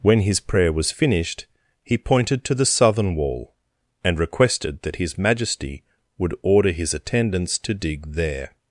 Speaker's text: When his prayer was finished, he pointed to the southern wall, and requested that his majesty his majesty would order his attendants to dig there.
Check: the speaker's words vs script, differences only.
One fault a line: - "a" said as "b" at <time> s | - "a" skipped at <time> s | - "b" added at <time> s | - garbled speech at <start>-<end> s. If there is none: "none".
- "his majesty" skipped at 5.8 s